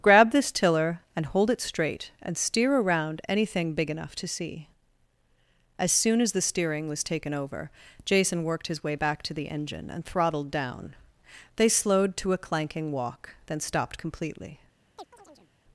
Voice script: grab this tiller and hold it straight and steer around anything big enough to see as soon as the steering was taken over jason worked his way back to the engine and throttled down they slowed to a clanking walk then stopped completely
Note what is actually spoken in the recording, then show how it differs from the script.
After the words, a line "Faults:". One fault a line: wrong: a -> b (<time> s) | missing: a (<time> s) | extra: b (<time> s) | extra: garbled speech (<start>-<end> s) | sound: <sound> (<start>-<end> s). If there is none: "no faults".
grab this tiller and hold it straight and steer around anything big enough to see as soon as the steering was taken over jason worked his way back to the engine and throttled down they slowed to a clanking walk then stopped completely
Faults:
sound: chirp (15.0-15.5 s)